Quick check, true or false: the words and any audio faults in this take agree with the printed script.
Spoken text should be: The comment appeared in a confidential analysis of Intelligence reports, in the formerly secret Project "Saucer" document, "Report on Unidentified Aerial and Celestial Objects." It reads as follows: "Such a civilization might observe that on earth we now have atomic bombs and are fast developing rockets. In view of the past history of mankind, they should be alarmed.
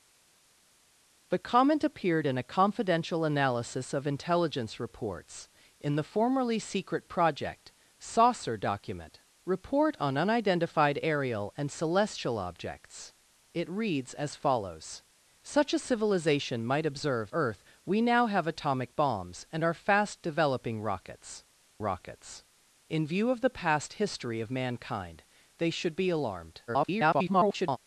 false